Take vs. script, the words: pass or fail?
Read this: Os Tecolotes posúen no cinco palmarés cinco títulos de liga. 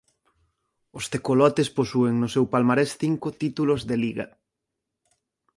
fail